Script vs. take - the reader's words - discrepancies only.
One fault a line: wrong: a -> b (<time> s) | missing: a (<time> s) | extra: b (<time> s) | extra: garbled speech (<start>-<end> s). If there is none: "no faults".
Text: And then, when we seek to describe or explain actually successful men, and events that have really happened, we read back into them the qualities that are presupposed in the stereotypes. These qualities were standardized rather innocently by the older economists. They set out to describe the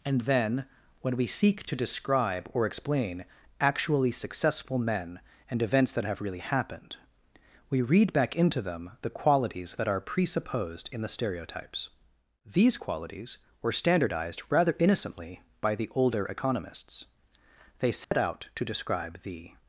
no faults